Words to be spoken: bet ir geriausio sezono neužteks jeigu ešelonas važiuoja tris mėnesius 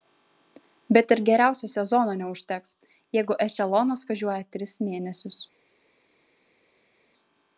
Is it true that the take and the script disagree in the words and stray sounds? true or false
false